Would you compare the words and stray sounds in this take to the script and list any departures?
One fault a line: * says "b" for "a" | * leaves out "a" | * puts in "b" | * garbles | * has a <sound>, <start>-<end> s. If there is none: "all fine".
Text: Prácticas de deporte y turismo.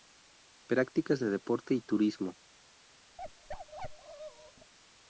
* has a bark, 3.2-4.7 s